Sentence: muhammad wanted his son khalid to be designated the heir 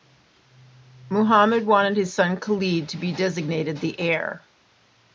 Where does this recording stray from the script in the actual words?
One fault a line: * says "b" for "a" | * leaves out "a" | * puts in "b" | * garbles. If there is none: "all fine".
all fine